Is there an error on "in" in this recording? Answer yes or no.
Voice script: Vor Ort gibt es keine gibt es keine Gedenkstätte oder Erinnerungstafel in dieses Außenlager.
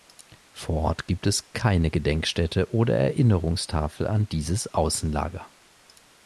yes